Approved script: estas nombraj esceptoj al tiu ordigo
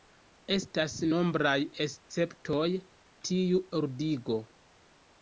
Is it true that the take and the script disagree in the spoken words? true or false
true